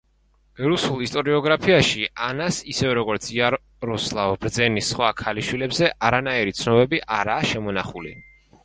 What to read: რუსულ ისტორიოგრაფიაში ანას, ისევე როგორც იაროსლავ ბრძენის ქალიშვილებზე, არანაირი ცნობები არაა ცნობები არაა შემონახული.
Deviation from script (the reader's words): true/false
true